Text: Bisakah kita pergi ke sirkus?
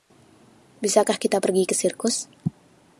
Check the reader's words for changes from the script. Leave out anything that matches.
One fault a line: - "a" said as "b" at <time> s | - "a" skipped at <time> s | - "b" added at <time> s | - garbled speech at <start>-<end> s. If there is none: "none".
none